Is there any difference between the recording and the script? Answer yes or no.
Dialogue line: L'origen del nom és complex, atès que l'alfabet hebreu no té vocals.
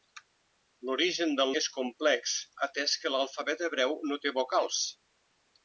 yes